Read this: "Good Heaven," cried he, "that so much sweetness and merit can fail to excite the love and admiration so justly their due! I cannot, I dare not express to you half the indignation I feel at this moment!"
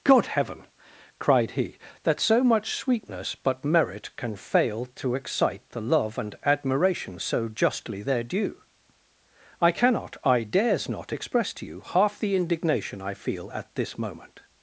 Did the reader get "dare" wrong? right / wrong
wrong